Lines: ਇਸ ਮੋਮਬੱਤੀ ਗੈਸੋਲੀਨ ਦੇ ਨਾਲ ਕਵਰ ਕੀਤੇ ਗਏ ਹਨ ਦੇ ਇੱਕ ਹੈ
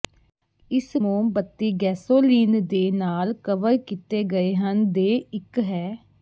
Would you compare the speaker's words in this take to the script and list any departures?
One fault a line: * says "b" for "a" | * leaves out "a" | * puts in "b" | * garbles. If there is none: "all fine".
all fine